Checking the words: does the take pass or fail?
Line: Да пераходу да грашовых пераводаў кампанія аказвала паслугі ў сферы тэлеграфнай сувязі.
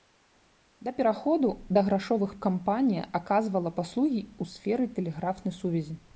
fail